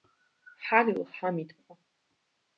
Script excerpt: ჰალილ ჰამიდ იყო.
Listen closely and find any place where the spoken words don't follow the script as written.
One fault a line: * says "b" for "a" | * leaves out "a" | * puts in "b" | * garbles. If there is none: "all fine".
all fine